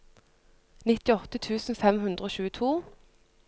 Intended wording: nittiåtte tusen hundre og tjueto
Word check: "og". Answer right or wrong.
right